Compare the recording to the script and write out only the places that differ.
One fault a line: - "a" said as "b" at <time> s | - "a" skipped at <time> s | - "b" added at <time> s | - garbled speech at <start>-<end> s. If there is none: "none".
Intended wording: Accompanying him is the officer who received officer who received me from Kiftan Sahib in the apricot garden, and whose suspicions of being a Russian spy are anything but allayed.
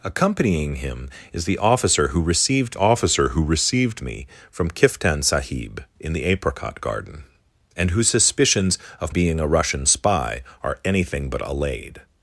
none